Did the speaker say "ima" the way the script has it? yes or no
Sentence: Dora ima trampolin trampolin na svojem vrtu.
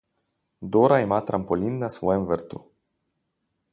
yes